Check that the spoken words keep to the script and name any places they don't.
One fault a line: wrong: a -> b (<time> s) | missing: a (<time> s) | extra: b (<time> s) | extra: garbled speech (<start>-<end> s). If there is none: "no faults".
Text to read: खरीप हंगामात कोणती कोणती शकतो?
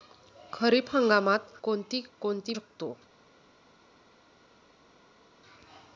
no faults